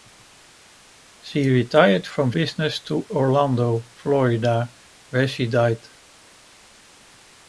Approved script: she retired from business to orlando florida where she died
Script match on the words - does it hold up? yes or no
yes